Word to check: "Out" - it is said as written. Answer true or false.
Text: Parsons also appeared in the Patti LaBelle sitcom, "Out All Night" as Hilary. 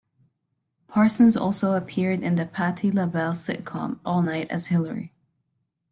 false